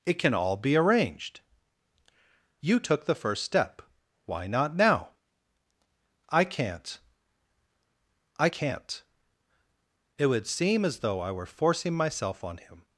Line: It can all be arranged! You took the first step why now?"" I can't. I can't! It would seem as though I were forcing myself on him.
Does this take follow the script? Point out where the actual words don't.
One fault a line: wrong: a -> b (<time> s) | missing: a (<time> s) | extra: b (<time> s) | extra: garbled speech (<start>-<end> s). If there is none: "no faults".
extra: not (4.5 s)